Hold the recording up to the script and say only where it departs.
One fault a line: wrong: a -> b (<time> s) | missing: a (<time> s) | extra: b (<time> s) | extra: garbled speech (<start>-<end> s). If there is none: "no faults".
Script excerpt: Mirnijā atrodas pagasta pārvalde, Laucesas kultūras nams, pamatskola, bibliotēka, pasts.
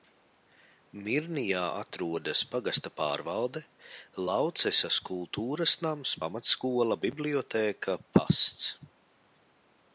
no faults